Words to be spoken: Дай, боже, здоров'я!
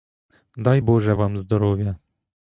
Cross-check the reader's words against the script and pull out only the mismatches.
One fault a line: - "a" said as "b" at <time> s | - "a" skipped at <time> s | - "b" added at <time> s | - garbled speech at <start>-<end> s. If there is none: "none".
- "вам" added at 1.1 s